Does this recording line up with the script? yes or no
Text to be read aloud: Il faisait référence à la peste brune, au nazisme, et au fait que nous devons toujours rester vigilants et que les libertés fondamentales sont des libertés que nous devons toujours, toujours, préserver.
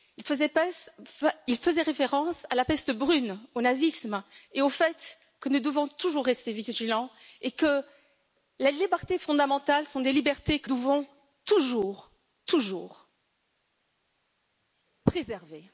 no